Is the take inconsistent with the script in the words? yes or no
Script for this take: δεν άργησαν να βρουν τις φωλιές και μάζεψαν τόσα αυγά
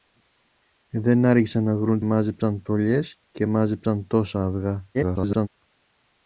yes